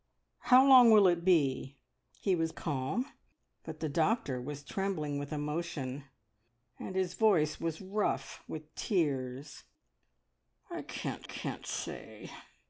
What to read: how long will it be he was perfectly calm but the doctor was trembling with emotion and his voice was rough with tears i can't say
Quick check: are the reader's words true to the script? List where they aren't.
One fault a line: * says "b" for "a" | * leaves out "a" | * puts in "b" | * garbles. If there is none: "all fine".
* leaves out "perfectly"
* puts in "can't"